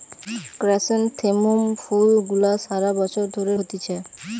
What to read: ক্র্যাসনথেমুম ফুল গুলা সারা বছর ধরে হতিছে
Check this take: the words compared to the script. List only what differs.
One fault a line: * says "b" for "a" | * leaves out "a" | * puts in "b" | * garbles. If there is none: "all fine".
all fine